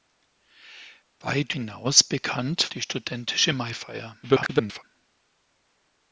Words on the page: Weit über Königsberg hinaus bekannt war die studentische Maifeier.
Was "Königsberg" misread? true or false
true